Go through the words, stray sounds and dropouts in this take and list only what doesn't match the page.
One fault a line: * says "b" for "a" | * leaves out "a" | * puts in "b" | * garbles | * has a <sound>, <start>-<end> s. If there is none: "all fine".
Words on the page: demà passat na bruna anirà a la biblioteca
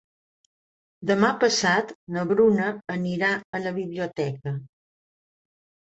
all fine